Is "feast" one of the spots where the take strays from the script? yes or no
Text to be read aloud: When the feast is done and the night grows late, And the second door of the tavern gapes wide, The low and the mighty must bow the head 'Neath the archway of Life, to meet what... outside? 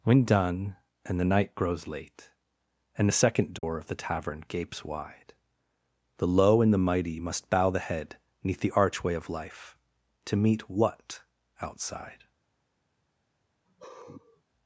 yes